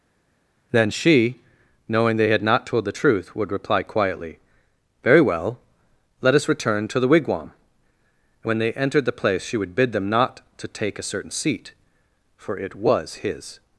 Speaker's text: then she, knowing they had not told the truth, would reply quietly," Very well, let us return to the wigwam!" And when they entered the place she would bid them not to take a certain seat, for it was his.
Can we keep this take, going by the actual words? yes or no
yes